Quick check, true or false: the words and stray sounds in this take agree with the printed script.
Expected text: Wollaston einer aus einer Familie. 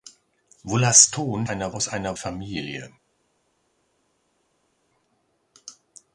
true